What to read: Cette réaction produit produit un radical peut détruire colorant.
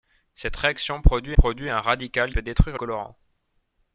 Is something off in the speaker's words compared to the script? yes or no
no